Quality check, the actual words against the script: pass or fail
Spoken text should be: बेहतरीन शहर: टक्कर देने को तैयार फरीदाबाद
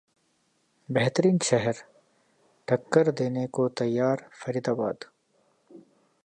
pass